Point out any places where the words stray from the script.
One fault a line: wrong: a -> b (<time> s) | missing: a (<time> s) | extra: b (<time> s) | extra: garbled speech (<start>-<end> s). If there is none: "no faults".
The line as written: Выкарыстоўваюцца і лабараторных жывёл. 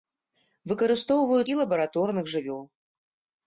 no faults